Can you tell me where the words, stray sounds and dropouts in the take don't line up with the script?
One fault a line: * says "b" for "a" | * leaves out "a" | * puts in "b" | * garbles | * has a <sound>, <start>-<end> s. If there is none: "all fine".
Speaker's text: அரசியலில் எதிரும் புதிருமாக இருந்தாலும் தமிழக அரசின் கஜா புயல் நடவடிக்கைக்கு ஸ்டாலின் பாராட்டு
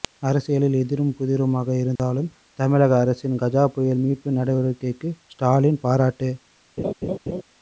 * has a dropout, 2.0-2.0 s
* puts in "மீட்பு"
* has a laugh, 6.8-7.4 s